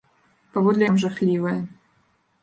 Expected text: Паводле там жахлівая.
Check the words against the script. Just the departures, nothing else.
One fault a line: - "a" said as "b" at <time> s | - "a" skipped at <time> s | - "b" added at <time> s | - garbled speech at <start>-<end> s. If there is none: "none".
none